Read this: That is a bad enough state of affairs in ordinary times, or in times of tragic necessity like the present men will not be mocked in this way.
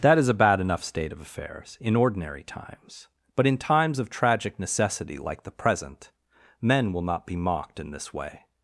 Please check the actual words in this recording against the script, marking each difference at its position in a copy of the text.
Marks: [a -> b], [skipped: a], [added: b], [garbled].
That is a bad enough state of affairs in ordinary times, [or -> but] in times of tragic necessity like the present men will not be mocked in this way.